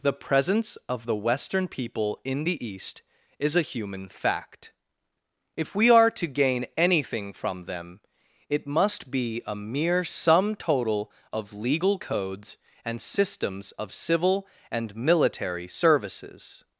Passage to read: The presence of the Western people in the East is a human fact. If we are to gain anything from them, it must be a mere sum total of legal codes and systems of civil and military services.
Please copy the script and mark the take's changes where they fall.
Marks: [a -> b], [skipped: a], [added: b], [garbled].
The presence of the Western people in the East is a human fact. If we are to gain anything from them, it must be a mere sum total of legal codes and systems of civil and military services.